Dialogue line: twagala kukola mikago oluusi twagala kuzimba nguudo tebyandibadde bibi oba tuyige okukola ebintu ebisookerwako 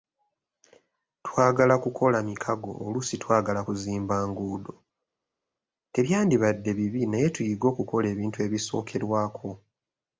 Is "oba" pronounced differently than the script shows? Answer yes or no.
yes